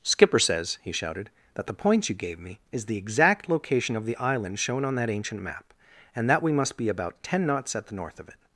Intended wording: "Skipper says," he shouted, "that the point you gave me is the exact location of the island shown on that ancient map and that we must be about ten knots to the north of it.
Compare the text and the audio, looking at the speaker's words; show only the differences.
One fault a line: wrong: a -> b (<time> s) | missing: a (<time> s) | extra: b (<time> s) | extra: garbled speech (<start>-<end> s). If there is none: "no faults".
wrong: to -> at (7.8 s)